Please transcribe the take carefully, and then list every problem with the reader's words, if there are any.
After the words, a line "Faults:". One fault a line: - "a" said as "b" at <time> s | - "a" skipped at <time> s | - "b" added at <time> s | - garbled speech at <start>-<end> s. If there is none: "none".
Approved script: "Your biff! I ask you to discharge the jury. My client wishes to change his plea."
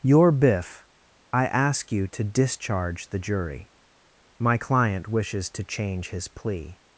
"Your biff! I ask you to discharge the jury. My client wishes to change his plea."
Faults:
none